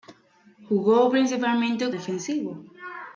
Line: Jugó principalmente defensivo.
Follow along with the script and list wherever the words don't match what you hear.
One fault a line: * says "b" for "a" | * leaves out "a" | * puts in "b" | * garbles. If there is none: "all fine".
all fine